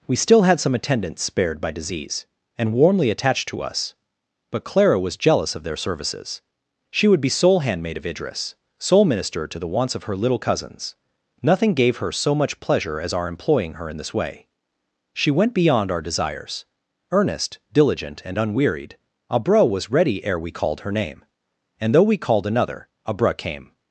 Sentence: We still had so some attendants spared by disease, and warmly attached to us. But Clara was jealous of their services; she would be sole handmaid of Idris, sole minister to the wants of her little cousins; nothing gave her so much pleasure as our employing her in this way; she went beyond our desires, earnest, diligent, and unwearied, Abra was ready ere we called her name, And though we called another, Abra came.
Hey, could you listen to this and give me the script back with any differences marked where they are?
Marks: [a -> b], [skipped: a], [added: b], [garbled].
We still had [skipped: so] some attendants spared by disease, and warmly attached to us. But Clara was jealous of their services; she would be sole handmaid of Idris, sole minister to the wants of her little cousins; nothing gave her so much pleasure as our employing her in this way; she went beyond our desires, earnest, diligent, and unwearied, Abra was ready ere we called her name, And though we called another, Abra came.